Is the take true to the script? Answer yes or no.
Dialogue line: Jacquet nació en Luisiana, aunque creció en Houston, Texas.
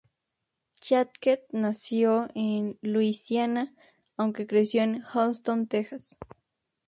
yes